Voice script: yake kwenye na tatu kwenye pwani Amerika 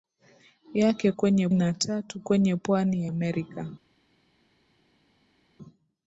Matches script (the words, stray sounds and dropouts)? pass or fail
pass